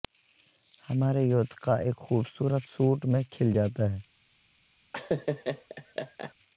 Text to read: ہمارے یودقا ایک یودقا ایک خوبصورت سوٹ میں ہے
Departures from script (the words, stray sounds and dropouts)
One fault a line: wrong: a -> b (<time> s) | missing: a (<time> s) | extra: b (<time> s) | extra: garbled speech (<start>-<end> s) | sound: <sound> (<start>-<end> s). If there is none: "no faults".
missing: یودقا ایک (2.0 s)
extra: کھل جاتا (3.3 s)
sound: laugh (4.9-6.3 s)